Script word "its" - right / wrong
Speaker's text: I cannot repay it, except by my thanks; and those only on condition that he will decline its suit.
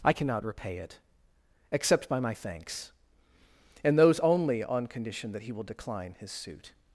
wrong